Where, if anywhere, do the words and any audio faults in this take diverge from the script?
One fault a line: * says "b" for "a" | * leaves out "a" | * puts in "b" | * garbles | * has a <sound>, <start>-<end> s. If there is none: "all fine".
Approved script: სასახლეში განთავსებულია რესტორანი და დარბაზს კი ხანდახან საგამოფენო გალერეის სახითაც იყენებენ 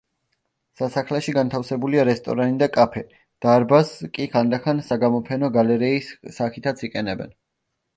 * puts in "კაფე"